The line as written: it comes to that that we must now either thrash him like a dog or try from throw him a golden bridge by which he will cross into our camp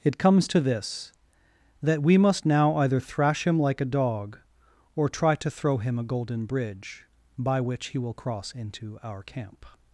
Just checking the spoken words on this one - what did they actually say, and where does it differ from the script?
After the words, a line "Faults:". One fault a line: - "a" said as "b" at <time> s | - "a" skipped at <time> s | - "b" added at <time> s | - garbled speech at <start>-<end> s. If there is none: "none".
it comes to this that we must now either thrash him like a dog or try to throw him a golden bridge by which he will cross into our camp
Faults:
- "that" said as "this" at 0.6 s
- "from" said as "to" at 5.3 s